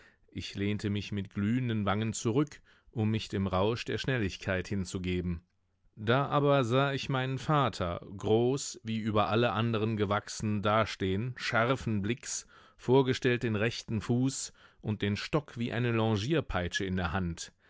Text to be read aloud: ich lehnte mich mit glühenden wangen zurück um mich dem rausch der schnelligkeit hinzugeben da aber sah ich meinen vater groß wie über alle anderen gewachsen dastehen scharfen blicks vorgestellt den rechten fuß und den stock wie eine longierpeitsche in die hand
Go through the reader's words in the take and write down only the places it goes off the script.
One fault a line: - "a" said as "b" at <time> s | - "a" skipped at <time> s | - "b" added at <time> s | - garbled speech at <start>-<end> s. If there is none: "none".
- "die" said as "der" at 16.9 s